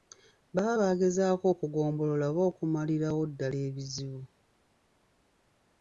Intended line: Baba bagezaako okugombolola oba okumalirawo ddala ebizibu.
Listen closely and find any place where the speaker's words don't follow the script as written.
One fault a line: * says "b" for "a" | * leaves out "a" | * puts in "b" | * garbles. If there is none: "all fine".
all fine